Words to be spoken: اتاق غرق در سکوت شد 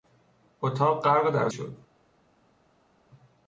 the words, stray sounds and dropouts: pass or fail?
fail